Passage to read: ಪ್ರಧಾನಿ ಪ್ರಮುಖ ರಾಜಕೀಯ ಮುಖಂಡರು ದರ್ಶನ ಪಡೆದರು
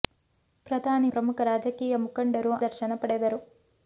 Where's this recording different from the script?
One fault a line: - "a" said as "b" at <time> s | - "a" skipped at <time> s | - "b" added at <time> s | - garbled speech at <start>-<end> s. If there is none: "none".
none